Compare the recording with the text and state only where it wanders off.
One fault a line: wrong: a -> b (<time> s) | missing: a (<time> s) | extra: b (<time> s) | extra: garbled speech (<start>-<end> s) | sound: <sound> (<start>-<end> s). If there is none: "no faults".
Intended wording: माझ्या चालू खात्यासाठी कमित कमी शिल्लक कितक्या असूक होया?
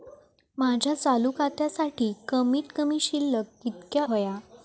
missing: असूक (4.0 s)